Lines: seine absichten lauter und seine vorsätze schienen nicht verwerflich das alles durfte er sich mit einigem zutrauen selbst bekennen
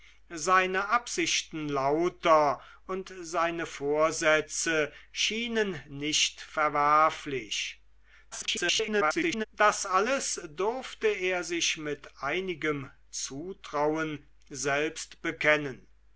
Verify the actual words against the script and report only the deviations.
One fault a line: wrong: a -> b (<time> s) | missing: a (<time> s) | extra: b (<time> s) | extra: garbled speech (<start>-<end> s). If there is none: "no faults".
extra: garbled speech (8.3-9.4 s)